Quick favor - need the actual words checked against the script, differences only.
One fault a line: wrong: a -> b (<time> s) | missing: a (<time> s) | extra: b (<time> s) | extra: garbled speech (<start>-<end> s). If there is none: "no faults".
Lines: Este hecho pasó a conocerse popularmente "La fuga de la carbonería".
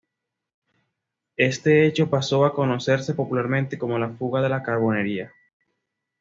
extra: como (3.8 s)